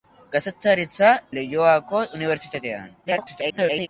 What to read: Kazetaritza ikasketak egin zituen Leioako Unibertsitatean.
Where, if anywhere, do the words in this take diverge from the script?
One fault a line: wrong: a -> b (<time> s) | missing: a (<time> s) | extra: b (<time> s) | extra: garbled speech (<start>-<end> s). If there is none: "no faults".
missing: ikasketak egin zituen (1.1 s)
extra: garbled speech (3.1-3.9 s)